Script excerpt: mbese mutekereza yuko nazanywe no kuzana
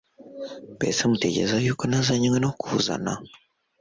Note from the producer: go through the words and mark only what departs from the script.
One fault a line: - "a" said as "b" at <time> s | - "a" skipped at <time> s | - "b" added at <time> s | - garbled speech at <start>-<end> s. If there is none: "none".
none